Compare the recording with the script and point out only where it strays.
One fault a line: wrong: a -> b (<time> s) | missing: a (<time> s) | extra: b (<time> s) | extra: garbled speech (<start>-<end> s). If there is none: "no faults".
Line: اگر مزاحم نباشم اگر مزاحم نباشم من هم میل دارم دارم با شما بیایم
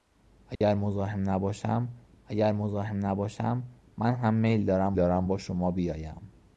no faults